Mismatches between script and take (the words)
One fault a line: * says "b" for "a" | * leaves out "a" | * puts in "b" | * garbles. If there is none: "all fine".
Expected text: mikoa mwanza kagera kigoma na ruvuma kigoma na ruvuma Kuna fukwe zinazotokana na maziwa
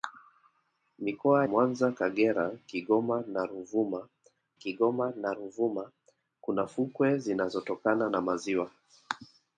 all fine